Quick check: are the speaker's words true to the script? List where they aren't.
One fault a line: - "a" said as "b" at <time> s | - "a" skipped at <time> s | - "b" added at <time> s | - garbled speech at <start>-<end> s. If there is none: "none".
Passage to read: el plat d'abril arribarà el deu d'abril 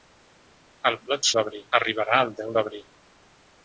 none